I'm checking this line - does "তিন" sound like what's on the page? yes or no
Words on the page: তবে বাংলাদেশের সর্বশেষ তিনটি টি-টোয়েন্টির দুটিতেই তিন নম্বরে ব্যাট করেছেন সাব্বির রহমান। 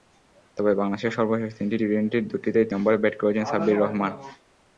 no